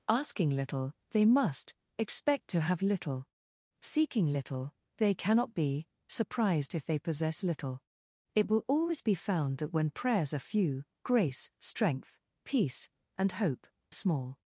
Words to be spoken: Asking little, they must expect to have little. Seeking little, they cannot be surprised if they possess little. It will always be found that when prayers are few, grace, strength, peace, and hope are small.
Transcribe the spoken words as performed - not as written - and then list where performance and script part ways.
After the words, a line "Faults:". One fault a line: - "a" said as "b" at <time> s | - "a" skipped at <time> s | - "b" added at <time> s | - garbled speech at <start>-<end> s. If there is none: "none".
Asking little, they must expect to have little. Seeking little, they cannot be surprised if they possess little. It will always be found that when prayers are few, grace, strength, peace, and hope small.
Faults:
- "are" skipped at 13.7 s